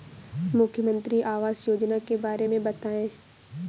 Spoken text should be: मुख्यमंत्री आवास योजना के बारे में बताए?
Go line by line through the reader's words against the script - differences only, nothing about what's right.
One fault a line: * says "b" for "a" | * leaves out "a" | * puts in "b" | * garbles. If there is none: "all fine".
all fine